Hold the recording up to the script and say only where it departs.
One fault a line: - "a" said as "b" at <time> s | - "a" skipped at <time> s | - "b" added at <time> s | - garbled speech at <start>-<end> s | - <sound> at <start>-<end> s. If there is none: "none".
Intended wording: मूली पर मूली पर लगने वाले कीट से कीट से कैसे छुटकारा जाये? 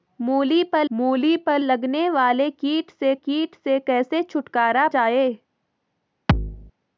- thud at 6.3-6.7 s